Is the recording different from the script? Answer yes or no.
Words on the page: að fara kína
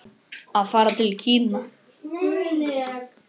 yes